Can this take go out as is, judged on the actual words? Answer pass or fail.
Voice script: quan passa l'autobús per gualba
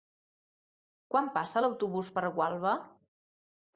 pass